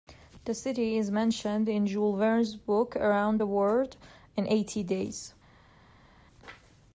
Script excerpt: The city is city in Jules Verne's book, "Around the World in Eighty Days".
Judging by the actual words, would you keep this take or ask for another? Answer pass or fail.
fail